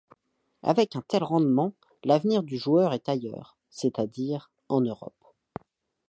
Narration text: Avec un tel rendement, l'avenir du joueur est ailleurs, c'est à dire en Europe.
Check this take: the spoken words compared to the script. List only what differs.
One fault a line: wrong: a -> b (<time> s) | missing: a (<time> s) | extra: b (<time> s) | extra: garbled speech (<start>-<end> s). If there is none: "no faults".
no faults